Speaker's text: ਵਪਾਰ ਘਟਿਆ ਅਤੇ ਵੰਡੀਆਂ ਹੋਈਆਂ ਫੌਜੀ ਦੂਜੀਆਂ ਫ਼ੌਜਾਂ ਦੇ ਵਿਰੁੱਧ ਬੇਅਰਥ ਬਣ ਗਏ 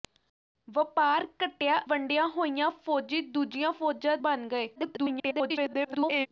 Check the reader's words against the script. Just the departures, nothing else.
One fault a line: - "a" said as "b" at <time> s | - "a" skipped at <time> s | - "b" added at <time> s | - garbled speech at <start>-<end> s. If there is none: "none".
- "ਅਤੇ" skipped at 1.8 s
- "ਦੇ ਵਿਰੁੱਧ ਬੇਅਰਥ" skipped at 4.2 s
- garbled speech at 4.8-6.3 s